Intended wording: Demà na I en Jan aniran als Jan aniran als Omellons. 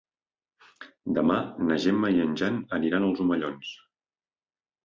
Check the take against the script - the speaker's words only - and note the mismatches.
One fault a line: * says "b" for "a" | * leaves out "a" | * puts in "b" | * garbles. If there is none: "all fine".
* puts in "Gemma"
* leaves out "Jan aniran als"